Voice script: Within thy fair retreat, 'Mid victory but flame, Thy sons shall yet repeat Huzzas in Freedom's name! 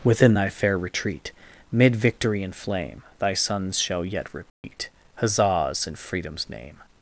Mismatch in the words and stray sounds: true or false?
true